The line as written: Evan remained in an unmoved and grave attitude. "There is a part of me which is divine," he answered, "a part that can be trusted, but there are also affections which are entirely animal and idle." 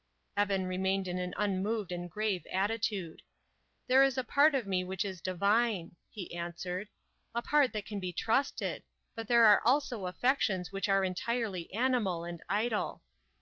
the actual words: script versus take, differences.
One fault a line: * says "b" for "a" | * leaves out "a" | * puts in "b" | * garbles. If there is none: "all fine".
all fine